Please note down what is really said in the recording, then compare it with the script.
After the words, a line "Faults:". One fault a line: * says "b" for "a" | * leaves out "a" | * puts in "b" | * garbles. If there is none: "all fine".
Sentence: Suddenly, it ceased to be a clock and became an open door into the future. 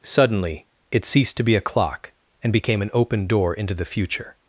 Suddenly, it ceased to be a clock and became an open door into the future.
Faults:
all fine